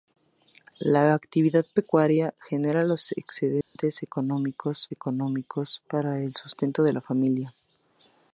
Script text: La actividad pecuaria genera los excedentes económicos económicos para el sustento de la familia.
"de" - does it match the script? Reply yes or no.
yes